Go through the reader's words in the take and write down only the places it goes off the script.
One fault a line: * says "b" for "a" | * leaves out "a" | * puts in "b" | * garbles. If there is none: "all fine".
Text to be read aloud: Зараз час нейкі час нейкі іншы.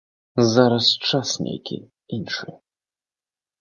* leaves out "час нейкі"